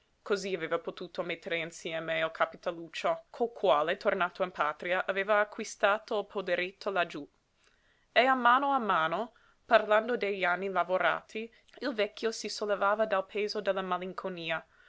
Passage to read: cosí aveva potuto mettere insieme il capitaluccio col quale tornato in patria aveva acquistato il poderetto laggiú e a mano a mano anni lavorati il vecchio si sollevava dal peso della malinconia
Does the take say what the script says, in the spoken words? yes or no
no